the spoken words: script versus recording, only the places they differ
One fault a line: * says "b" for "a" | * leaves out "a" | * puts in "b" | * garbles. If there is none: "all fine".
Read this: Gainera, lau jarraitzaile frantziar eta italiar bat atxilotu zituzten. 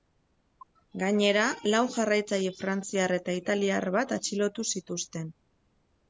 all fine